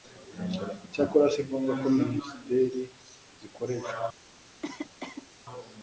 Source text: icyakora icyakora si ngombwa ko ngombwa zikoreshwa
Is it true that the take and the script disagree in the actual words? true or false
true